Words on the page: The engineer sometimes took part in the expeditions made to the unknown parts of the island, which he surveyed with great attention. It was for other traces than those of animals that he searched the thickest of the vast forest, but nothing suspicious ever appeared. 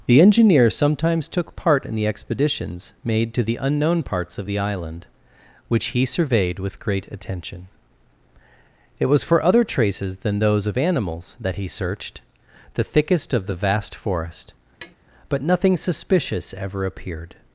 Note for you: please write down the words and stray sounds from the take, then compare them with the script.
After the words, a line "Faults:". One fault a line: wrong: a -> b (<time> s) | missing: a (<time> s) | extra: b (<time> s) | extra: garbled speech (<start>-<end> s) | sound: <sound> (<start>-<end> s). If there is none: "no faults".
The engineer sometimes took part in the expeditions made to the unknown parts of the island, which he surveyed with great attention. It was for other traces than those of animals that he searched the thickest of the vast forest, but nothing suspicious ever appeared.
Faults:
sound: tap (14.8-15.0 s)